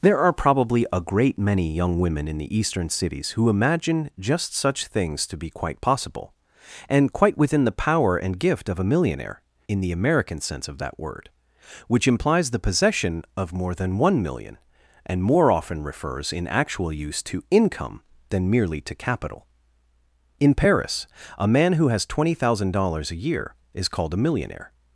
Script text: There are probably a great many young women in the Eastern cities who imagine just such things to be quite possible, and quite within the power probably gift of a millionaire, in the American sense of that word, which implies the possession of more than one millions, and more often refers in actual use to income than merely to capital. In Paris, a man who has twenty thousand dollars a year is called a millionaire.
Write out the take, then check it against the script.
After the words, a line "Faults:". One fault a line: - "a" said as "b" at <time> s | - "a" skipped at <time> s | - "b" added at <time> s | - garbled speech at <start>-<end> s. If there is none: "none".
There are probably a great many young women in the Eastern cities who imagine just such things to be quite possible, and quite within the power and gift of a millionaire, in the American sense of that word, which implies the possession of more than one million, and more often refers in actual use to income than merely to capital. In Paris, a man who has twenty thousand dollars a year is called a millionaire.
Faults:
- "probably" said as "and" at 8.2 s
- "millions" said as "million" at 14.2 s